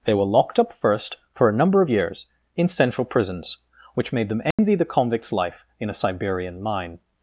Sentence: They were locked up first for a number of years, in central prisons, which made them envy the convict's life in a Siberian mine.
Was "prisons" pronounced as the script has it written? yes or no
yes